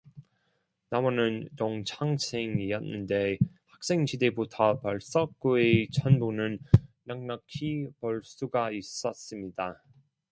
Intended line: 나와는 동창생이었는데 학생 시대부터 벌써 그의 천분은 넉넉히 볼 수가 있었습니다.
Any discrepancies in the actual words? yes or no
no